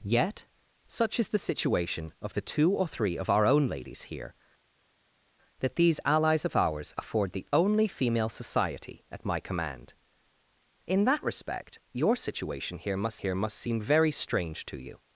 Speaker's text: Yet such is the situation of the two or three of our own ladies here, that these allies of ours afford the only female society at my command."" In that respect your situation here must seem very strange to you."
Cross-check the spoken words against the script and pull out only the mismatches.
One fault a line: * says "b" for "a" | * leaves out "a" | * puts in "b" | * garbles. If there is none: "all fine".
* puts in "here must"